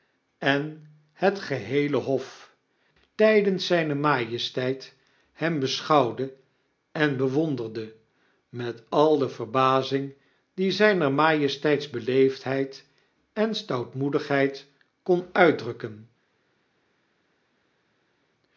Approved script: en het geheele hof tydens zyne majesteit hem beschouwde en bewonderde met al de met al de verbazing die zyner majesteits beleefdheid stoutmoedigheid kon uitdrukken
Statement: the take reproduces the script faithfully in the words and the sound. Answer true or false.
false